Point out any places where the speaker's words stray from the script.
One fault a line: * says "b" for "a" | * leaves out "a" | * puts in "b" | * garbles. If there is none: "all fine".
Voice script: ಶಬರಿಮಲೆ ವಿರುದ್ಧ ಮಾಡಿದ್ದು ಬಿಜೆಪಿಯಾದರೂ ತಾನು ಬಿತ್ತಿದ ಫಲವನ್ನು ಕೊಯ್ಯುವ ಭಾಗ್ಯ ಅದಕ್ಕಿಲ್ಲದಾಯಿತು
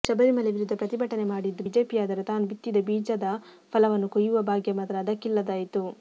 * puts in "ಪ್ರತಿಭಟನೆ"
* puts in "ಬೀಜದ"
* puts in "ಮಾತ್ರ"